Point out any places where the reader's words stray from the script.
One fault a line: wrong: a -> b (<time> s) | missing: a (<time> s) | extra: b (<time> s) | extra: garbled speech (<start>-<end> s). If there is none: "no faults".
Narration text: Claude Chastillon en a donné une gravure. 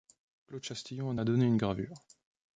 no faults